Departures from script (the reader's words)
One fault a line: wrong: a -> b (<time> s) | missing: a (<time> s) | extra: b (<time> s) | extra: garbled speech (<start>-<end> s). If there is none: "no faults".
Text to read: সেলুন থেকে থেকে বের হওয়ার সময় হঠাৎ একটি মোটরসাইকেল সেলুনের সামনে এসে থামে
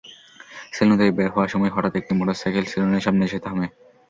missing: থেকে (1.1 s)